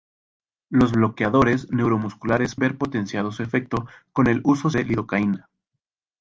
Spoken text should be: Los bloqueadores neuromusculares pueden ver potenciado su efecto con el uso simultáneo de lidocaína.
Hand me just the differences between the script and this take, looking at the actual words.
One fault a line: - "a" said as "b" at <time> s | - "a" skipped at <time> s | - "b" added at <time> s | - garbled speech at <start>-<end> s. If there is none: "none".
- "pueden" skipped at 2.5 s
- "simultáneo" skipped at 4.7 s